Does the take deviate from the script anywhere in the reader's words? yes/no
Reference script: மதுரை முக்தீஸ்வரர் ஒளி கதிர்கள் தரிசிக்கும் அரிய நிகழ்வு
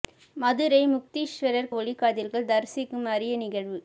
no